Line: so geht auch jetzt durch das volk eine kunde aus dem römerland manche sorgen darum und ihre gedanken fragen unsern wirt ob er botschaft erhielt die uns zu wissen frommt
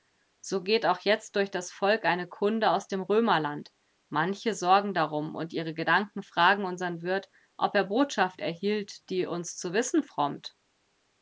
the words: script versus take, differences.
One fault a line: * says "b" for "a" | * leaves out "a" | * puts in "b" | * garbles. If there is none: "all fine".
all fine